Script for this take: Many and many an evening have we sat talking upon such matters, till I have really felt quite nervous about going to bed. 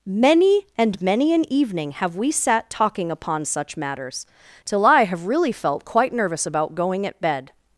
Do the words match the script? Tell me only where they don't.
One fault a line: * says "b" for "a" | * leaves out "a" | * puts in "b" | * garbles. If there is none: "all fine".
* says "at" for "to"